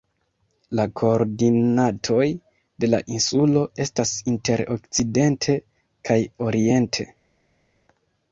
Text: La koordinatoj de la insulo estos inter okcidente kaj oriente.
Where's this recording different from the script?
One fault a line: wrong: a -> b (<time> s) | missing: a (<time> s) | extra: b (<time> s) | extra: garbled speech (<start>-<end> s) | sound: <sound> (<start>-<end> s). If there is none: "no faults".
wrong: estos -> estas (3.9 s)